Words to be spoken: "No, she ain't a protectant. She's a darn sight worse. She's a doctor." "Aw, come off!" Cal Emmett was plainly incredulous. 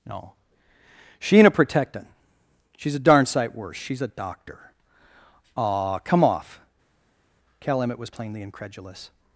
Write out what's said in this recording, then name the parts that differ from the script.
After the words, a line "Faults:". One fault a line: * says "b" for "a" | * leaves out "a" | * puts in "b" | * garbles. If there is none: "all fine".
"No, she ain't a protectant. She's a darn sight worse. She's a doctor." "Aw, come off!" Cal Emmett was plainly incredulous.
Faults:
all fine